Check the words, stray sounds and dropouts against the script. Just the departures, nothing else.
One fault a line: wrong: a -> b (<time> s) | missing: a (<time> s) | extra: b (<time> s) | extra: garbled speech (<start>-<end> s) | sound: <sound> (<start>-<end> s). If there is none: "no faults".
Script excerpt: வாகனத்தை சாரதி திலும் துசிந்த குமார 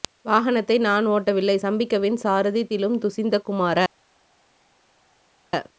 extra: நான் ஓட்டவில்லை சம்பிக்கவின் (0.8 s)